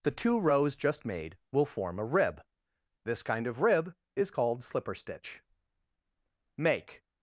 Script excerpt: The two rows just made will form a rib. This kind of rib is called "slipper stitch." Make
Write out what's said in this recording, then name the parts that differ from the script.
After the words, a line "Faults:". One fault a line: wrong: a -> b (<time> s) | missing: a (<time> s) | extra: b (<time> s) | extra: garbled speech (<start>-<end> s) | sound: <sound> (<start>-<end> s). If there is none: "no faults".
The two rows just made will form a rib. This kind of rib is called "slipper stitch." Make
Faults:
no faults